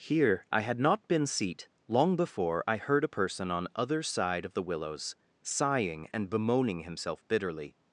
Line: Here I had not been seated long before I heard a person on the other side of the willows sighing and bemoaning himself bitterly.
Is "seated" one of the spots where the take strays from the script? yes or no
yes